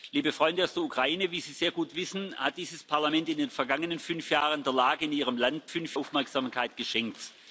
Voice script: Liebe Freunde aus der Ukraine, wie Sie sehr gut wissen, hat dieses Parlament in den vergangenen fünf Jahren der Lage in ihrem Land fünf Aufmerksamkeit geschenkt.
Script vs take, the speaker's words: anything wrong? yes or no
no